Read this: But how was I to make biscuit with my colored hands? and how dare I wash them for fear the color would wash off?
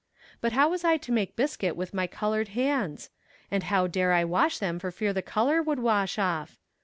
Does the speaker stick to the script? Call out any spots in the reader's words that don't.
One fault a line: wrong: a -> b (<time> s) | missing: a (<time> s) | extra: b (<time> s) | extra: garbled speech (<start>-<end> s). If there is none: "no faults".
no faults